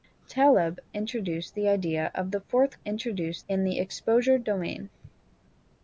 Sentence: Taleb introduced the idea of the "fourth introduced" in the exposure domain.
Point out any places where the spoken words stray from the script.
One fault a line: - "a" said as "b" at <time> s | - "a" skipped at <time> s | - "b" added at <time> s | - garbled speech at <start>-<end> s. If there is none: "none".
none